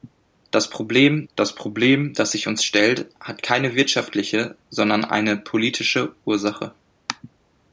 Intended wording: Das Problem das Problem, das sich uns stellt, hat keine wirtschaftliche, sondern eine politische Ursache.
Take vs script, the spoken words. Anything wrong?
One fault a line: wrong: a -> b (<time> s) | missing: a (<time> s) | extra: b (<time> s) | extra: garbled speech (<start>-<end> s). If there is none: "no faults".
no faults